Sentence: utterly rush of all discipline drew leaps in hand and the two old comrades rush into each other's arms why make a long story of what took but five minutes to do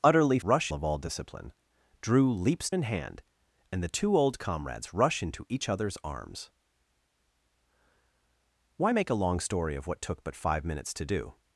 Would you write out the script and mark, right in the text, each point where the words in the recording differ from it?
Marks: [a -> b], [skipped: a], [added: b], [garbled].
utterly rush of all discipline drew leaps in hand and the two old comrades rush into each other's arms why make a long story of what took but five minutes to do